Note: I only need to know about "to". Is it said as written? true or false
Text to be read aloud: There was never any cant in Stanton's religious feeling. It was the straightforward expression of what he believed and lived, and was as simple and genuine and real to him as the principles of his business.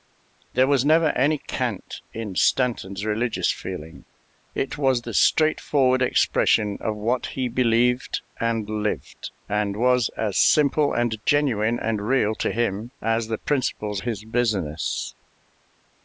true